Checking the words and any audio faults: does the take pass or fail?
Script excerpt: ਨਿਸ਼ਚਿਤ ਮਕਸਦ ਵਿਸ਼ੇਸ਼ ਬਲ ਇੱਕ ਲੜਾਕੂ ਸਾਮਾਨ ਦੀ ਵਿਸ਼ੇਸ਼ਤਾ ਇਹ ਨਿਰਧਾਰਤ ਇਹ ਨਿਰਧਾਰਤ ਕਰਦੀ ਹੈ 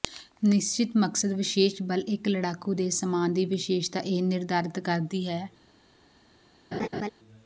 fail